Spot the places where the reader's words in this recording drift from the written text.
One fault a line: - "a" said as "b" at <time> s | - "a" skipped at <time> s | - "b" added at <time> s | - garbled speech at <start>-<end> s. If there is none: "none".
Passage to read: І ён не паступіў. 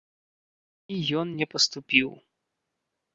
none